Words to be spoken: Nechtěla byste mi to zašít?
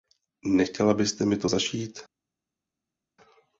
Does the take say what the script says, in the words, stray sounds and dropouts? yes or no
yes